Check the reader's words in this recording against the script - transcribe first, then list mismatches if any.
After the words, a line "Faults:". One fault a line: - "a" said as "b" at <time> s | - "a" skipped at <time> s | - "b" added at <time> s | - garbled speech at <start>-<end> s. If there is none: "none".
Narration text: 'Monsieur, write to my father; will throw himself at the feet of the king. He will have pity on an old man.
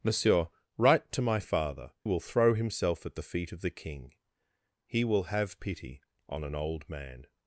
'Monsieur, write to my father; will throw himself at the feet of the king. He will have pity on an old man.
Faults:
none